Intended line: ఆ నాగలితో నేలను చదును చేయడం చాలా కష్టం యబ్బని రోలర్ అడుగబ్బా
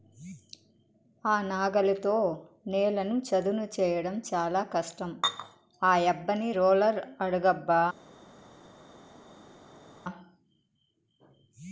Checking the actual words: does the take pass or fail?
fail